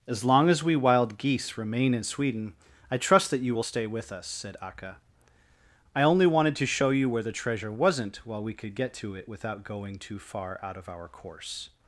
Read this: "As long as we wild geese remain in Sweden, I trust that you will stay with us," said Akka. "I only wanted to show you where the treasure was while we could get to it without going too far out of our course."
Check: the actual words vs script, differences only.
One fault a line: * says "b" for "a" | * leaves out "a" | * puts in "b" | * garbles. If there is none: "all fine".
* says "wasn't" for "was"